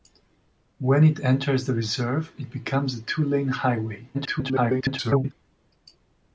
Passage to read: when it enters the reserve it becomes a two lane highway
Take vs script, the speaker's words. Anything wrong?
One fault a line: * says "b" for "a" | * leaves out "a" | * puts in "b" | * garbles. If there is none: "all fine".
* garbles